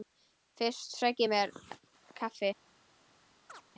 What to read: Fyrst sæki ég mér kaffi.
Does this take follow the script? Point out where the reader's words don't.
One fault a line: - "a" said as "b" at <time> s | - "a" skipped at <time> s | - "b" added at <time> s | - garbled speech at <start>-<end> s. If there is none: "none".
none